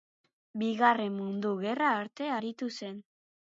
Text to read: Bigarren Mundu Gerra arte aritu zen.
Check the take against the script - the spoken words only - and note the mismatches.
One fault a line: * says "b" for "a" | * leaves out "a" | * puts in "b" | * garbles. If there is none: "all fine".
all fine